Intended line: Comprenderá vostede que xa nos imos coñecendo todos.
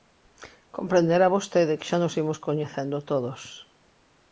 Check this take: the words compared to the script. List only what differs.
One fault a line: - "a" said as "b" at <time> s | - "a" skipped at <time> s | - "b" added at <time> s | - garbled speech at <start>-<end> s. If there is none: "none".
none